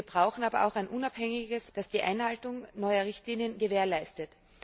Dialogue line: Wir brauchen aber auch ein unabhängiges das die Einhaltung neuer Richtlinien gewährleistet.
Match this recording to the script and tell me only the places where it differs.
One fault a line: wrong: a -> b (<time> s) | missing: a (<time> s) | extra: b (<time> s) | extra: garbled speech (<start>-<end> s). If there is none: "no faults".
no faults